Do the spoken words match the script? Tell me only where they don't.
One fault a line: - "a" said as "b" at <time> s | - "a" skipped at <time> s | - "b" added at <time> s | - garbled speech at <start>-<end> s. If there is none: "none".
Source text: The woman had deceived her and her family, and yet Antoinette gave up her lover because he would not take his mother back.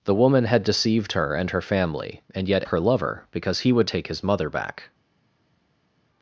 - "Antoinette gave up" skipped at 2.7 s
- "not" skipped at 3.9 s